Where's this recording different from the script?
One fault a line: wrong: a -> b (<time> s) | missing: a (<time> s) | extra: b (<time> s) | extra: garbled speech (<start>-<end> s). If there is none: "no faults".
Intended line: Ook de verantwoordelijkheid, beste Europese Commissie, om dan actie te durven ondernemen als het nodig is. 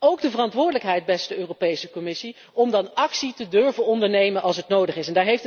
no faults